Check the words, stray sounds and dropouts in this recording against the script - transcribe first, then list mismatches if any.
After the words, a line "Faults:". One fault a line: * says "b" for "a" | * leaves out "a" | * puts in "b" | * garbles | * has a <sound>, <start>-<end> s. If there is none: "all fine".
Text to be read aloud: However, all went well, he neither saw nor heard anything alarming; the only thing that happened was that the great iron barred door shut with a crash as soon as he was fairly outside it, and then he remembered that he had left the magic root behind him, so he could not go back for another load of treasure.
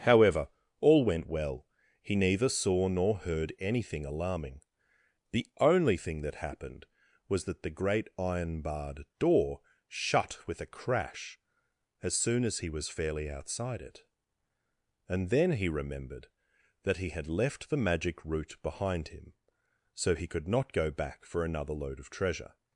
However, all went well, he neither saw nor heard anything alarming; the only thing that happened was that the great iron barred door shut with a crash as soon as he was fairly outside it, and then he remembered that he had left the magic root behind him, so he could not go back for another load of treasure.
Faults:
all fine